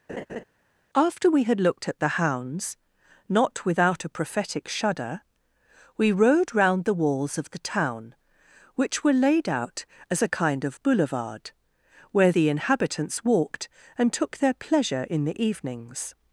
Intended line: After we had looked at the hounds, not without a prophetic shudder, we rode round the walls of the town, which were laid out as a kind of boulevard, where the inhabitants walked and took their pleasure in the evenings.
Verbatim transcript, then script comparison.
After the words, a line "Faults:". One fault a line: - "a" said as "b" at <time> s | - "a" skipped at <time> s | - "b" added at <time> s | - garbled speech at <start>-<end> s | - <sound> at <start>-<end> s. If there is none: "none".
After we had looked at the hounds, not without a prophetic shudder, we rode round the walls of the town, which were laid out as a kind of boulevard, where the inhabitants walked and took their pleasure in the evenings.
Faults:
- laugh at 0.1-0.4 s